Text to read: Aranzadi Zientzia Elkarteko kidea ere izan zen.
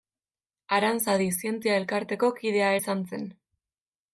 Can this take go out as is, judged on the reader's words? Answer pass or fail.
fail